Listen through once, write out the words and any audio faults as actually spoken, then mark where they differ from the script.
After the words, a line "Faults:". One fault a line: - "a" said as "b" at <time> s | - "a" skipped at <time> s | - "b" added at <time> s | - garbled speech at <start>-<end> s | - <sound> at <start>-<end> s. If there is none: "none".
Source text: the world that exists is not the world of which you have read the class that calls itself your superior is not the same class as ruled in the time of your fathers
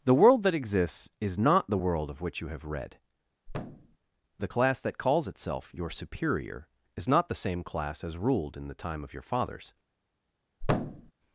the world that exists is not the world of which you have read the class that calls itself your superior is not the same class as ruled in the time of your fathers
Faults:
- thud at 3.5-4.0 s
- thud at 10.6-11.1 s